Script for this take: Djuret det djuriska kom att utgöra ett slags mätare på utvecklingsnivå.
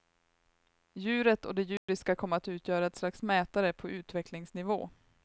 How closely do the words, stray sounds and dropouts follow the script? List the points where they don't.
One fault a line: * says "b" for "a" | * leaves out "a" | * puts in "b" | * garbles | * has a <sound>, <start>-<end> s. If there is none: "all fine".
* puts in "och"
* has a dropout, 1.8-1.9 s